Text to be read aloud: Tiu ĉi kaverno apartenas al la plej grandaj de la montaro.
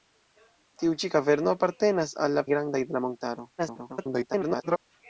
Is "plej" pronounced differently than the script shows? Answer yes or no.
yes